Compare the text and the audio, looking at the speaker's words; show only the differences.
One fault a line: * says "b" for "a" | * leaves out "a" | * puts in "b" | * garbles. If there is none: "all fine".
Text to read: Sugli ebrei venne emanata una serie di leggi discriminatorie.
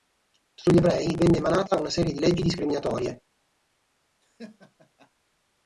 all fine